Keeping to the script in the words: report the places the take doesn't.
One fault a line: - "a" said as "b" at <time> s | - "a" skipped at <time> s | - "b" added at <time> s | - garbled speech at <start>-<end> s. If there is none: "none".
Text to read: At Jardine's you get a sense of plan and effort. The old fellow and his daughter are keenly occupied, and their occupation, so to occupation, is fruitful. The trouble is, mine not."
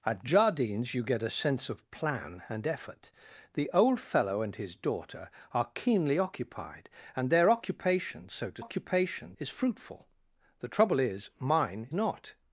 none